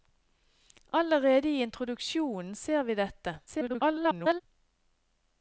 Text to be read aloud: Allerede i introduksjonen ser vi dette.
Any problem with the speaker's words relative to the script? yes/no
yes